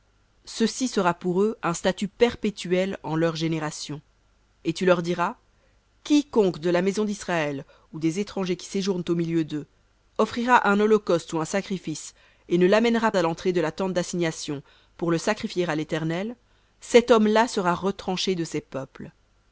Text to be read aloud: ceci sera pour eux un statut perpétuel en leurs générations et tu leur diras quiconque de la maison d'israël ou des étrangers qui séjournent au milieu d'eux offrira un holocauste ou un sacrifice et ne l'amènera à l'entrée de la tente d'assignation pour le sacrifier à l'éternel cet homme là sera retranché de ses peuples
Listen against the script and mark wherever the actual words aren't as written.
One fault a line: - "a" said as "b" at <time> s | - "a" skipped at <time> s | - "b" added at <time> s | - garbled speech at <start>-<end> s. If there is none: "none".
none